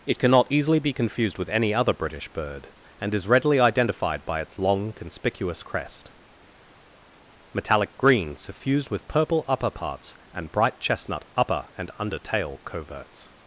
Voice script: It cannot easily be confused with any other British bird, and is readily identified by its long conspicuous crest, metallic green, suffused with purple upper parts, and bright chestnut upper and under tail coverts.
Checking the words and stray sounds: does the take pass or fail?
pass